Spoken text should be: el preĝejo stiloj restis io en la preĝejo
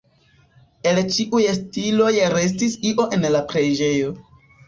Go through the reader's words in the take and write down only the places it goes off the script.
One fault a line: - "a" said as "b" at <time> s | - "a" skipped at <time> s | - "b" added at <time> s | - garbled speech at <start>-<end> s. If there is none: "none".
- "preĝejo" said as "ĉiuj" at 1.1 s